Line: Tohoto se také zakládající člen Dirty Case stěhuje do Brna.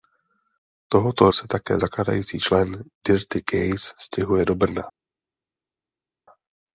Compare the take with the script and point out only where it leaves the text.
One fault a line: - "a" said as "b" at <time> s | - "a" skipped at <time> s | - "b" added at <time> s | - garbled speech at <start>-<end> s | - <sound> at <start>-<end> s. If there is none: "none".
none